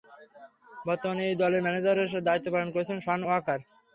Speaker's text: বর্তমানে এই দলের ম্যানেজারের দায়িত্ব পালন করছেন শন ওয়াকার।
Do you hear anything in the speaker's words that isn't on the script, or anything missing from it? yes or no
no